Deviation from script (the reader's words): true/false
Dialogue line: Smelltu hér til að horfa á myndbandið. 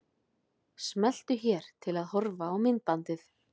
false